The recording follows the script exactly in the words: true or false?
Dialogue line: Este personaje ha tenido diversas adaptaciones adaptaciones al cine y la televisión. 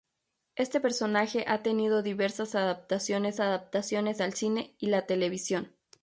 true